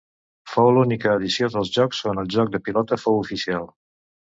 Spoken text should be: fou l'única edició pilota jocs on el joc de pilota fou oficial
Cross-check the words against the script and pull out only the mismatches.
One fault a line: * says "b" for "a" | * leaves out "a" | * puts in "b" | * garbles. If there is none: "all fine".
* says "dels" for "pilota"